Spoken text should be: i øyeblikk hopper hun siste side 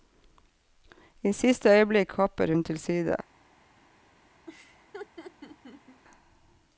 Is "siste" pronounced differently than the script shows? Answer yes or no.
yes